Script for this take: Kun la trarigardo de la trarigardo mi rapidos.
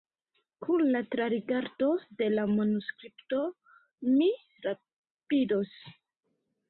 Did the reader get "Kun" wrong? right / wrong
right